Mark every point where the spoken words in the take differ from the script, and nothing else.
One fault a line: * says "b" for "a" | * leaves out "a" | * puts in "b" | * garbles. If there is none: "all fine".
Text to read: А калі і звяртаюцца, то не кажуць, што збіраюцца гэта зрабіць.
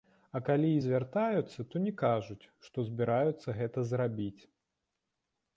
all fine